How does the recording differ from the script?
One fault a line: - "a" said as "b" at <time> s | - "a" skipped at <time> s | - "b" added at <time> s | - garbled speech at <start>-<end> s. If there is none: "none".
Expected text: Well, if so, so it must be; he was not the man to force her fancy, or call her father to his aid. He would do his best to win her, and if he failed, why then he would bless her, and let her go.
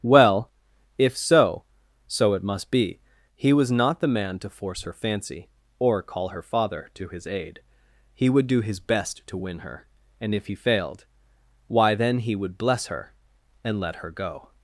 none